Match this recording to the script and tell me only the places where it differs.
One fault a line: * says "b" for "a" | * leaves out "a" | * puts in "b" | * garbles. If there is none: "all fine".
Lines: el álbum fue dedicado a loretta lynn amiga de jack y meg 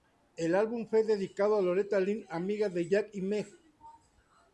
all fine